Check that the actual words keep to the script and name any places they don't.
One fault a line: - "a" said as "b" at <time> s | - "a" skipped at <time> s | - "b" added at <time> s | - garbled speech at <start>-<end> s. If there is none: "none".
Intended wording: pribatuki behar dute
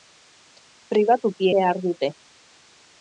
none